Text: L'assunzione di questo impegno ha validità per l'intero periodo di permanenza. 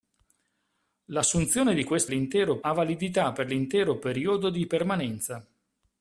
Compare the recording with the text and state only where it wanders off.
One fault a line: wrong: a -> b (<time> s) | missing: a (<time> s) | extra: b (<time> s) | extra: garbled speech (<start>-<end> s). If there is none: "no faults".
wrong: impegno -> l'intero (2.0 s)